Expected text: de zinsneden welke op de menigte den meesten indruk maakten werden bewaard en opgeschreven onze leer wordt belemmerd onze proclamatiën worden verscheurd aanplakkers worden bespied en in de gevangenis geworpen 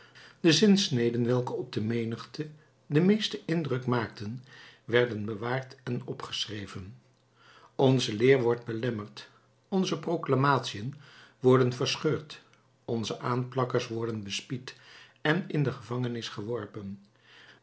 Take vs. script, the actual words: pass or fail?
fail